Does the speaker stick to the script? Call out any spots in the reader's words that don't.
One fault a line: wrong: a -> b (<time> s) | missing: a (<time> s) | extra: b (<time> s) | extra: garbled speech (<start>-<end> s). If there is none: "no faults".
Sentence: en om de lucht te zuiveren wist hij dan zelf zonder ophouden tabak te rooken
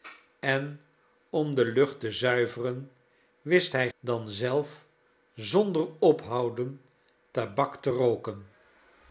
no faults